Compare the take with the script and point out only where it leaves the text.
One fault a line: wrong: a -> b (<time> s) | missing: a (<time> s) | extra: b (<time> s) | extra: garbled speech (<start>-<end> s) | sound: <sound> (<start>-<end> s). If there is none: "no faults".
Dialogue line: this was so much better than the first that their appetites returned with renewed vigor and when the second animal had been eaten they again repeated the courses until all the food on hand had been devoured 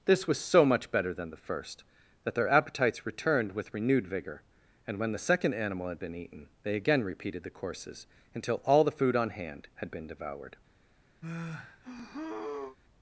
sound: sigh (11.2-12.8 s)